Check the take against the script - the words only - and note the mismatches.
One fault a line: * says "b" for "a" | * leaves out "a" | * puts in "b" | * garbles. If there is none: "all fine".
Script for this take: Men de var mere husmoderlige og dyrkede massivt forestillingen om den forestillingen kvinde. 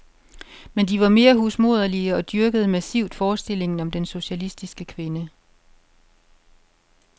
* says "socialistiske" for "forestillingen"